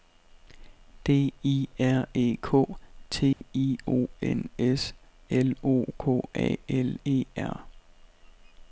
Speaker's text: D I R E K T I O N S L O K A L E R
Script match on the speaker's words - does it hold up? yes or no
yes